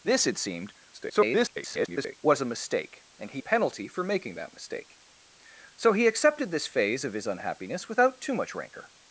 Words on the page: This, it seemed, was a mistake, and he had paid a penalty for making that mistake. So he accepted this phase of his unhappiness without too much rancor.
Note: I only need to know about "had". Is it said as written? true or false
false